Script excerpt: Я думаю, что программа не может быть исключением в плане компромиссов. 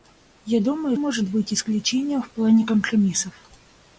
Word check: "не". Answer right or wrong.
wrong